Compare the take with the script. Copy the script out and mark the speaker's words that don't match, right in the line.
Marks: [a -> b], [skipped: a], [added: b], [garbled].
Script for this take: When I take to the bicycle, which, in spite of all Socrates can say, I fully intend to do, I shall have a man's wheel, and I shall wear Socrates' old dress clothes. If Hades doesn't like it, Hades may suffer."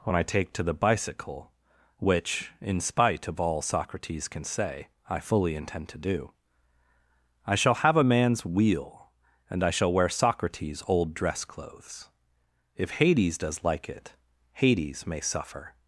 When I take to the bicycle, which, in spite of all Socrates can say, I fully intend to do, I shall have a man's wheel, and I shall wear Socrates' old dress clothes. If Hades [doesn't -> does] like it, Hades may suffer."